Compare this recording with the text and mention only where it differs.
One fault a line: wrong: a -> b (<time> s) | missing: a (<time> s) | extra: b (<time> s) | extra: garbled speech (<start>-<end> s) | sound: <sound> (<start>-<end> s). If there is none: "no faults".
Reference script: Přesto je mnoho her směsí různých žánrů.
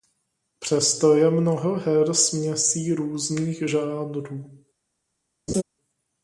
sound: laugh (5.5-5.6 s)